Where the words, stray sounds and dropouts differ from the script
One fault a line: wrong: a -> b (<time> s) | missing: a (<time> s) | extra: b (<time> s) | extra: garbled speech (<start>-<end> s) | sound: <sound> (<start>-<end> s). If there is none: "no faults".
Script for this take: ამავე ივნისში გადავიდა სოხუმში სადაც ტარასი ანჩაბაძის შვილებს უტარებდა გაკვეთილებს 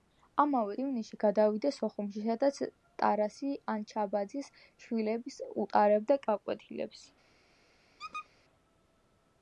sound: squeak (8.0-8.3 s)